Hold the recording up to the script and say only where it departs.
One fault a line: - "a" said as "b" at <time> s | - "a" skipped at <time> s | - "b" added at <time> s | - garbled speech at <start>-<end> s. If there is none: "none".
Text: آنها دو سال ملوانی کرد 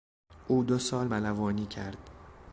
- "آنها" said as "او" at 0.5 s